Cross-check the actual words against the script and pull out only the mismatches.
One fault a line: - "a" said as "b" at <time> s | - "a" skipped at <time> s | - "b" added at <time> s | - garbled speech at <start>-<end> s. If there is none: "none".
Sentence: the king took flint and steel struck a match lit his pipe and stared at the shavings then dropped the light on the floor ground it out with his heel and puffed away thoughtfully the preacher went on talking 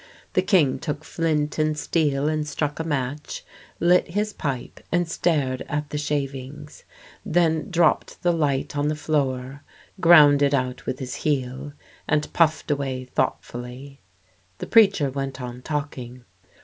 - "and" added at 2.3 s